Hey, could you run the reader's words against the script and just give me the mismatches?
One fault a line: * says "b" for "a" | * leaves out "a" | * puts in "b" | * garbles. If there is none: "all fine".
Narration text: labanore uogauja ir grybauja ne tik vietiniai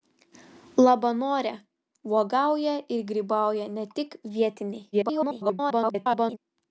* garbles